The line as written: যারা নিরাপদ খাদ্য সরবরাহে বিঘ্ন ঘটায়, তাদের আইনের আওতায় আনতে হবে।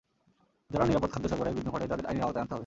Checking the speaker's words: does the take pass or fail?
pass